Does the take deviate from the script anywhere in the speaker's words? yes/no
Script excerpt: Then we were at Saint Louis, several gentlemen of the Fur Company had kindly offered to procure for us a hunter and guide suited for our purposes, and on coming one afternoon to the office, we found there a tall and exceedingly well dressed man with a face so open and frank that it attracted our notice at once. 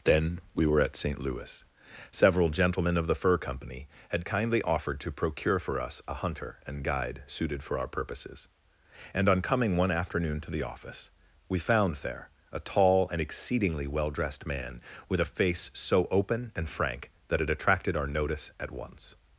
no